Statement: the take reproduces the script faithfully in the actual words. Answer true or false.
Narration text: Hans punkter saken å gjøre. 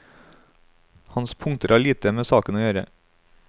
false